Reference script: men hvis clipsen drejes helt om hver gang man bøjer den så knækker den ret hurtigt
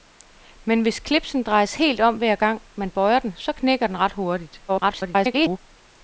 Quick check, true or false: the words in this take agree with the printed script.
false